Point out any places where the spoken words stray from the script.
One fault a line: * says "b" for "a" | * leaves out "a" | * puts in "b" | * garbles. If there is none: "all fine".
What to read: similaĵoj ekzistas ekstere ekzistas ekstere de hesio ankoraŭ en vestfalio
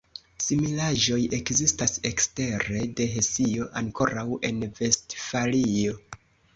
* leaves out "ekzistas ekstere"